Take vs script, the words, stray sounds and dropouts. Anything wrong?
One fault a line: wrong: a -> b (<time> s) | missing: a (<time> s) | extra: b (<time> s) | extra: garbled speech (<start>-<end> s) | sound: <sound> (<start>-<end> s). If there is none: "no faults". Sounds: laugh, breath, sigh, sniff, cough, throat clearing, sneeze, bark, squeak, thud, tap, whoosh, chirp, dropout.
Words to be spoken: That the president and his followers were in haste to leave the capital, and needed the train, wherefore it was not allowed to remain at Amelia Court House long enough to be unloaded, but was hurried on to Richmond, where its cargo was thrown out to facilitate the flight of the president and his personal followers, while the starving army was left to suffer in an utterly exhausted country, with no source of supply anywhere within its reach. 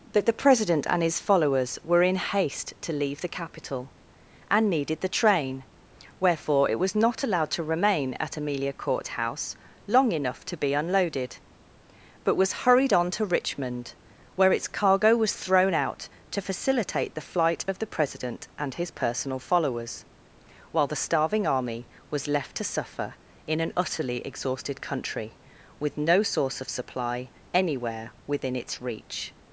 no faults